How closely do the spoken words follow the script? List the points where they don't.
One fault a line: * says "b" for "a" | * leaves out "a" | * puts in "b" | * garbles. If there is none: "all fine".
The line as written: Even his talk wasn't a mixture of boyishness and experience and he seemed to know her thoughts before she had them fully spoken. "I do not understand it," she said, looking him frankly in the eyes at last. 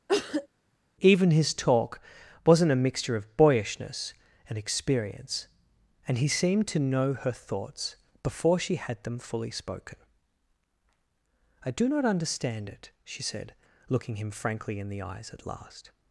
all fine